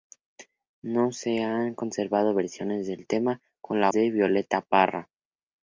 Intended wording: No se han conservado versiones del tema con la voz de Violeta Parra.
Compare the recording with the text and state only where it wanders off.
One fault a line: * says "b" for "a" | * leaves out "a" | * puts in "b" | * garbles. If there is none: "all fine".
* leaves out "voz"